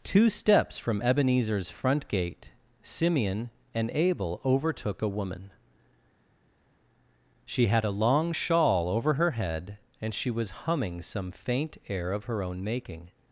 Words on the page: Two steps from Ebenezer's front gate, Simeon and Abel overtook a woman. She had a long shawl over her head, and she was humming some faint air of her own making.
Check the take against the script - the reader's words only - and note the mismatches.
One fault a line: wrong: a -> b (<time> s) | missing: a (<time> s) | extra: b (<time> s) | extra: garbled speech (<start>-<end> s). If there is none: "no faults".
no faults